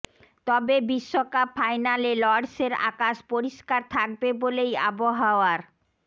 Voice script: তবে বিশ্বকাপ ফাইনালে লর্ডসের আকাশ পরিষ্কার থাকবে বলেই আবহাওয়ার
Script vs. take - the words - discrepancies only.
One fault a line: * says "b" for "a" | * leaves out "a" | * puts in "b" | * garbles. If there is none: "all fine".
all fine